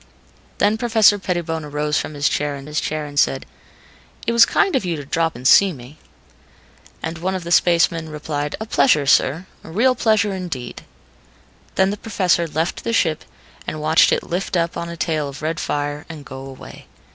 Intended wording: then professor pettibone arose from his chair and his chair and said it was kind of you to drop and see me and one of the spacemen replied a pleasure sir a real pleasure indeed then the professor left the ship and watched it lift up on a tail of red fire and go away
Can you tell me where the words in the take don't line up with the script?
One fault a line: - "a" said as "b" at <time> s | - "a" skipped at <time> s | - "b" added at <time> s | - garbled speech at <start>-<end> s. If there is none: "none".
none